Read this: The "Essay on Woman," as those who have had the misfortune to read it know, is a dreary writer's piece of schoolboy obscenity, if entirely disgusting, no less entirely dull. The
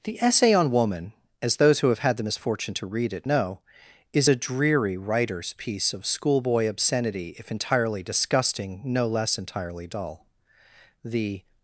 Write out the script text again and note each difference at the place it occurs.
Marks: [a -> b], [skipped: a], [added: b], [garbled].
The "Essay on Woman," as those who have had the misfortune to read it know, is a dreary writer's piece of schoolboy obscenity, if entirely disgusting, no less entirely dull. The